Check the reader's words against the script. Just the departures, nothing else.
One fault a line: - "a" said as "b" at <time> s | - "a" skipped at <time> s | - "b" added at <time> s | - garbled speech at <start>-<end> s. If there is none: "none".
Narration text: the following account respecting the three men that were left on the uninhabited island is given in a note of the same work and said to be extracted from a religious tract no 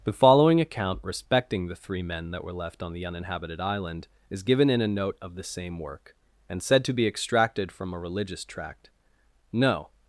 none